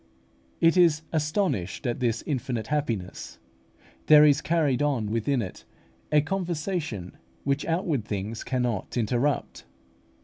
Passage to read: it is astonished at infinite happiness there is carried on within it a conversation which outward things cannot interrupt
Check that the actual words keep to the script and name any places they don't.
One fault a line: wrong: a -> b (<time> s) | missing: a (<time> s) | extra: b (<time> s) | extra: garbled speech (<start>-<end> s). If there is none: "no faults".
extra: this (2.0 s)